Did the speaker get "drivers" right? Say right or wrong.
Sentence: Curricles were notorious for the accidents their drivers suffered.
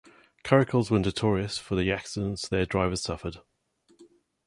right